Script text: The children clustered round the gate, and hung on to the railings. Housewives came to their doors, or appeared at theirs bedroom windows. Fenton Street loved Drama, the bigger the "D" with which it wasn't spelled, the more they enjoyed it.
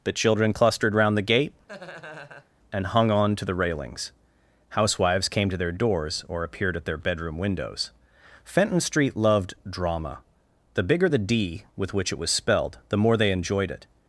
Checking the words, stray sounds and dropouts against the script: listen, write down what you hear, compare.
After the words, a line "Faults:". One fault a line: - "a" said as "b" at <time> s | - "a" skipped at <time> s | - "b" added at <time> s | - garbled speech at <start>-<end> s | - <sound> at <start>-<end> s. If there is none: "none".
The children clustered round the gate, and hung on to the railings. Housewives came to their doors, or appeared at their bedroom windows. Fenton Street loved Drama, the bigger the "D" with which it was spelled, the more they enjoyed it.
Faults:
- laugh at 1.7-2.5 s
- "theirs" said as "their" at 6.8 s
- "wasn't" said as "was" at 12.2 s